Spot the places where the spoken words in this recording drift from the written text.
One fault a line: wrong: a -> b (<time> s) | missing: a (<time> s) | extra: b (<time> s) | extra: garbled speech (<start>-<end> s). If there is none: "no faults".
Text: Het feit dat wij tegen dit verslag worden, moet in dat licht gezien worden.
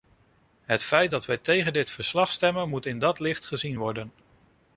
wrong: worden -> stemmen (2.3 s)